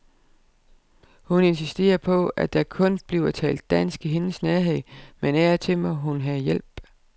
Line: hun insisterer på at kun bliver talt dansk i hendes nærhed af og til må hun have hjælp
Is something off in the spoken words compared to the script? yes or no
yes